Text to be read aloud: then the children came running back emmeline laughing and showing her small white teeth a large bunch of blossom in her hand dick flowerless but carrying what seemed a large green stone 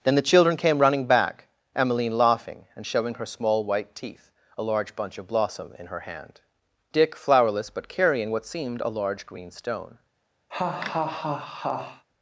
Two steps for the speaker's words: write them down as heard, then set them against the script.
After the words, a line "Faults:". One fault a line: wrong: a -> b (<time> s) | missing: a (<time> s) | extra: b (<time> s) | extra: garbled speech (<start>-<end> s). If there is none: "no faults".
then the children came running back emmeline laughing and showing her small white teeth a large bunch of blossom in her hand dick flowerless but carrying what seemed a large green stone
Faults:
no faults